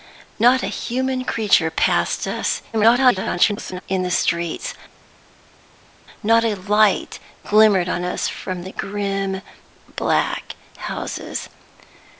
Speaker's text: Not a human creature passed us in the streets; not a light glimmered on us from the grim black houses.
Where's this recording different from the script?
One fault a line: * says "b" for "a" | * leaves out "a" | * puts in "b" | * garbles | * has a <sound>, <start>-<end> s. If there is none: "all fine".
* garbles